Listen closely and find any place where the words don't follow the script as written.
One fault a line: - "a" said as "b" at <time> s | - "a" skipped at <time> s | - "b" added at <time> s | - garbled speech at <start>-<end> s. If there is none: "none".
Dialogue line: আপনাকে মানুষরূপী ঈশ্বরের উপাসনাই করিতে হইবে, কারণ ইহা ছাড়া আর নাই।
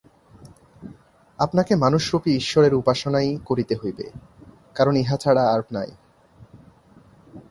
none